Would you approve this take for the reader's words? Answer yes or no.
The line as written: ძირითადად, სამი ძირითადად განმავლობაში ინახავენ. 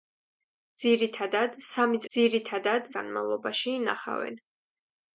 yes